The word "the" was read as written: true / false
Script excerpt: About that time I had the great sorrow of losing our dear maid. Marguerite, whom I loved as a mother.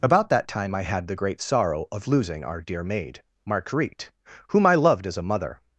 true